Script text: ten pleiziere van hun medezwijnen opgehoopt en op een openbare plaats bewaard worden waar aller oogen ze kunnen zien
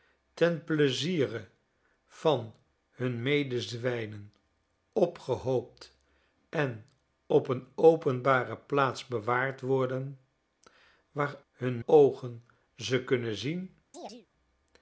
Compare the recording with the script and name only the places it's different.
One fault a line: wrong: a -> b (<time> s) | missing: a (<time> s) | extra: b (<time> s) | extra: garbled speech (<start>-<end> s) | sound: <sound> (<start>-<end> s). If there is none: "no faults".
wrong: aller -> hun (11.5 s)
sound: chirp (13.9-14.3 s)